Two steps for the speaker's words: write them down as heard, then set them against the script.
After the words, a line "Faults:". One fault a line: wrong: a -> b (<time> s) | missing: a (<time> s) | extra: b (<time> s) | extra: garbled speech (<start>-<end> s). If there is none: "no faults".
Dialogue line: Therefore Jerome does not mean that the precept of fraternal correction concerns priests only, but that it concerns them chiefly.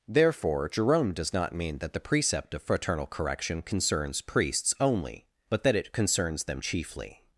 Therefore Jerome does not mean that the precept of fraternal correction concerns priests only, but that it concerns them chiefly.
Faults:
no faults